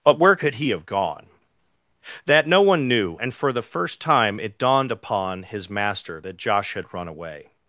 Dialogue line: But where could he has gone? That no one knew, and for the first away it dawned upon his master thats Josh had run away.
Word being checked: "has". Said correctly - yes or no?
no